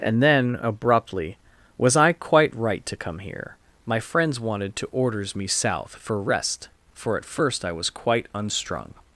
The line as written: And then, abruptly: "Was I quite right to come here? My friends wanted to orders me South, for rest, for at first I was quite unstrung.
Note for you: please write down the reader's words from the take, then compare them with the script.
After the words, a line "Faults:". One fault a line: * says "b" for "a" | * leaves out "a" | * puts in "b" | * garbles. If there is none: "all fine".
And then, abruptly: "Was I quite right to come here? My friends wanted to orders me South, for rest, for at first I was quite unstrung.
Faults:
all fine